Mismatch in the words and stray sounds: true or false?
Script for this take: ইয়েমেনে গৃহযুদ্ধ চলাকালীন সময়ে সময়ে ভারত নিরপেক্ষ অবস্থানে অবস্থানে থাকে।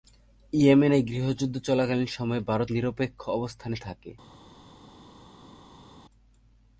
true